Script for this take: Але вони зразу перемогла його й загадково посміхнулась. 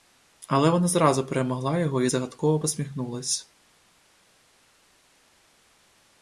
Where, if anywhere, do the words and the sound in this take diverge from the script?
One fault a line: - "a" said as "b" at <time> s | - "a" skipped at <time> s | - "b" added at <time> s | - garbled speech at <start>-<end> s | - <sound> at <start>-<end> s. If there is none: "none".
- "вони" said as "вона" at 0.7 s